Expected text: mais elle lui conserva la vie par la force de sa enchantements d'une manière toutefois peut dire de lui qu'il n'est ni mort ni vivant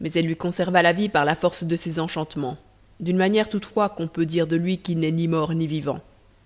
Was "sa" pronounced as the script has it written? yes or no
no